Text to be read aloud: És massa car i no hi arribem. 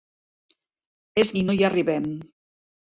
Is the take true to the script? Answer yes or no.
no